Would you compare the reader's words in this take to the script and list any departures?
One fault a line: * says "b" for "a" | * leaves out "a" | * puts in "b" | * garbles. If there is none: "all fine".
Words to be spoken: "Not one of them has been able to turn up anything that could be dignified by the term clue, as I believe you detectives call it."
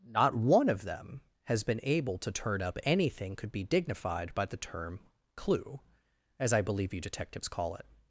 * leaves out "that"